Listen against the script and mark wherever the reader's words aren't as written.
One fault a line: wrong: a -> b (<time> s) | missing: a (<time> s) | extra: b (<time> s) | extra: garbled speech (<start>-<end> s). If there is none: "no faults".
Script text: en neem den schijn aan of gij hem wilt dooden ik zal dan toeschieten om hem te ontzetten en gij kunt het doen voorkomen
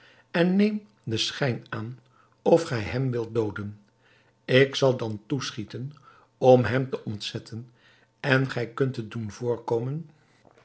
no faults